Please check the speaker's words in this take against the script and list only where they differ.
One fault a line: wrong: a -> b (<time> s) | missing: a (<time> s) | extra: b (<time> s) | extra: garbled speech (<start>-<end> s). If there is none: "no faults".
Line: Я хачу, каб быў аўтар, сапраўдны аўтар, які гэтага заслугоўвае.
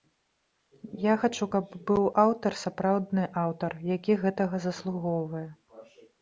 no faults